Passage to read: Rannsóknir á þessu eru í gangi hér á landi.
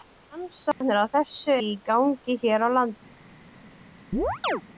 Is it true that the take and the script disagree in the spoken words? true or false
true